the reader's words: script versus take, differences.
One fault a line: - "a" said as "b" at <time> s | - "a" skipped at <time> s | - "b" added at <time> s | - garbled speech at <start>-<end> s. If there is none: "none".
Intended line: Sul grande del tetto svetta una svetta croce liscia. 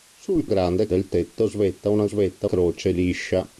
none